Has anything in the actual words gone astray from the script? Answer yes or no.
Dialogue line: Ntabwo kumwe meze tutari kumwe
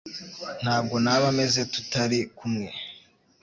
yes